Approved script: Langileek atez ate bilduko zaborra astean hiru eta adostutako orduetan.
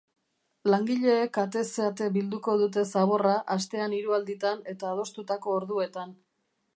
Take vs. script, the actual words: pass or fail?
fail